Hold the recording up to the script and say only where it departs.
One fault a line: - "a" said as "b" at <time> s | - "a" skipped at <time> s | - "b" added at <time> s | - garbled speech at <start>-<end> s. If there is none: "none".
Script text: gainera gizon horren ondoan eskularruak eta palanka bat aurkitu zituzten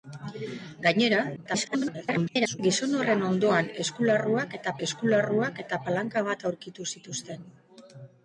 - garbled speech at 1.4-2.6 s
- "eskularruak eta" added at 4.9 s